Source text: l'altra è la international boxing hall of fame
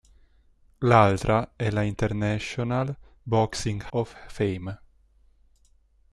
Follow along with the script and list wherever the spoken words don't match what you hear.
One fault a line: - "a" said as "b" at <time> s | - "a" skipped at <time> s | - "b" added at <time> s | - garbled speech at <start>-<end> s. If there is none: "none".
- "hall" skipped at 3.8 s